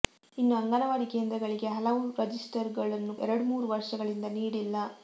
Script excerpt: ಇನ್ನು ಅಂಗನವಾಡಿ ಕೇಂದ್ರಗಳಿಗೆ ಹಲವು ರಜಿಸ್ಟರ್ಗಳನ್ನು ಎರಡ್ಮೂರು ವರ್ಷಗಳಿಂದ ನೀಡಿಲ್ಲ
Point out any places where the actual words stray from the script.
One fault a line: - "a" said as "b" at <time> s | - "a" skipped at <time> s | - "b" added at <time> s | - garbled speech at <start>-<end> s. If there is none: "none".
none